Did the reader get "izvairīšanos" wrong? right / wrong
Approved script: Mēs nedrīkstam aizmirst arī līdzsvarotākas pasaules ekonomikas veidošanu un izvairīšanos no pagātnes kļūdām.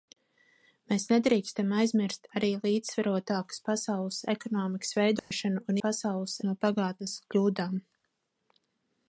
wrong